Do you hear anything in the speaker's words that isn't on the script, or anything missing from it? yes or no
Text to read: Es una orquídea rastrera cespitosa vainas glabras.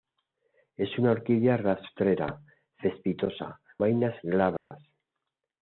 no